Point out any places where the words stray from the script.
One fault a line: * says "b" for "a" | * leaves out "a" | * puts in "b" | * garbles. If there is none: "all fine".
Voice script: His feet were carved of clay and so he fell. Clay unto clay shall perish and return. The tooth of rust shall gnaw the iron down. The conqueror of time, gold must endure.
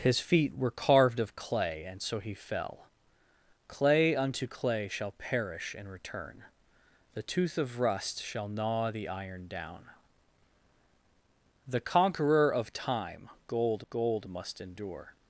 * puts in "gold"